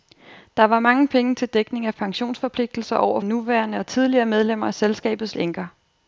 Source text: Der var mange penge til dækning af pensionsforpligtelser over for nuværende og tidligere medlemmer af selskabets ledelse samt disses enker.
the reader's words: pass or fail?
fail